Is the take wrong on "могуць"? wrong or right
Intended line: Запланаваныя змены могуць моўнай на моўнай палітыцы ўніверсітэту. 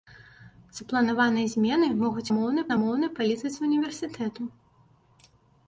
right